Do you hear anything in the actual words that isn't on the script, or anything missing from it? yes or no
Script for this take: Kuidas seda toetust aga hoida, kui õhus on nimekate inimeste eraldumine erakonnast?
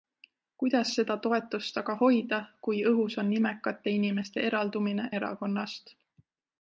no